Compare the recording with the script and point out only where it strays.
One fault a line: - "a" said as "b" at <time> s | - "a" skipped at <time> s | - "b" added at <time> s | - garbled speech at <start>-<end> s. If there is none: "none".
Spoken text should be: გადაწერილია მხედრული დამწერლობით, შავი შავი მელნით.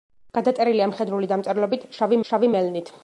none